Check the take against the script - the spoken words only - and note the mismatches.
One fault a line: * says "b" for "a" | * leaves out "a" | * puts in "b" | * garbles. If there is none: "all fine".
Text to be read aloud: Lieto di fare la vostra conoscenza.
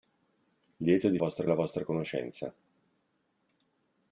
* says "vostra" for "fare"